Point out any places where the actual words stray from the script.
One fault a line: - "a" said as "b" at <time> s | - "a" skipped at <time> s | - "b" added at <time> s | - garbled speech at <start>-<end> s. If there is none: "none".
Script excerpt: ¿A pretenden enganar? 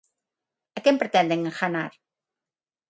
- "quen" added at 0.8 s